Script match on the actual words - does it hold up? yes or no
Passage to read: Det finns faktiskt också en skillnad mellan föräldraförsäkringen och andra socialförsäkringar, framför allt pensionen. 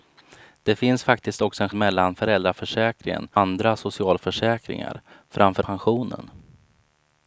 no